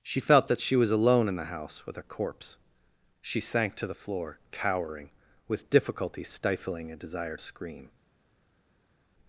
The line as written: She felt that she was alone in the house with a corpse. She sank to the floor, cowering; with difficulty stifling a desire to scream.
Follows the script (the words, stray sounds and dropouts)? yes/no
no